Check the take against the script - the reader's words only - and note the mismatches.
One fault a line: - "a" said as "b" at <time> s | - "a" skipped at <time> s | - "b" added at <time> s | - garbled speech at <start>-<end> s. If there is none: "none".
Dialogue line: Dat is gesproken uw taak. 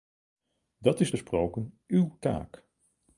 none